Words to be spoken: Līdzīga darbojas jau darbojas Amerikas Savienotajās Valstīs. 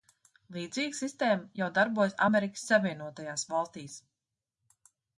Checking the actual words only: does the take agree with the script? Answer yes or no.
no